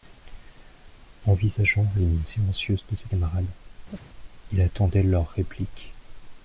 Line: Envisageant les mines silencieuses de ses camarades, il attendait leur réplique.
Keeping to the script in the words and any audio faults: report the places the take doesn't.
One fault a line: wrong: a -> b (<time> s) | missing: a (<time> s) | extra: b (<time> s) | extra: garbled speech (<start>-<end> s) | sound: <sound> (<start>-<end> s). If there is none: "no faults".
sound: chirp (3.9-4.1 s)